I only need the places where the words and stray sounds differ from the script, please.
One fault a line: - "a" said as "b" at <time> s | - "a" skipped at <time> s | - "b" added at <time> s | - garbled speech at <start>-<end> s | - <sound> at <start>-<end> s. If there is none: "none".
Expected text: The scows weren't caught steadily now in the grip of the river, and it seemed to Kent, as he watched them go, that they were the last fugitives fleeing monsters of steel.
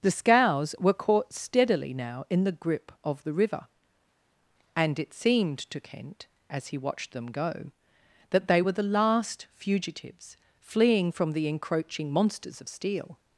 - "weren't" said as "were" at 0.8 s
- "from the encroaching" added at 11.1 s